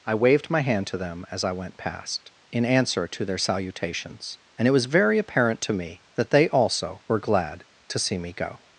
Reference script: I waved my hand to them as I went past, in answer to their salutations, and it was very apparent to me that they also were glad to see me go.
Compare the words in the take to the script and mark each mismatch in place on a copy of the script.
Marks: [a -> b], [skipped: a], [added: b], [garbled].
I waved my hand to them as I went past, in answer to their salutations, and it was very apparent to me that they also were glad to see me go.